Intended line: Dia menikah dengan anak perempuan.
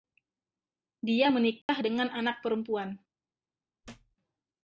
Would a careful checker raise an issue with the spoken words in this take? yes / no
no